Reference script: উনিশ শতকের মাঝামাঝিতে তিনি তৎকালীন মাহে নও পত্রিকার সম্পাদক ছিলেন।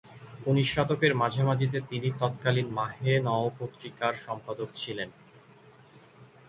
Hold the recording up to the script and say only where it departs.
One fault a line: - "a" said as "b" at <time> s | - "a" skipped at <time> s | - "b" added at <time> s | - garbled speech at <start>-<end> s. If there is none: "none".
none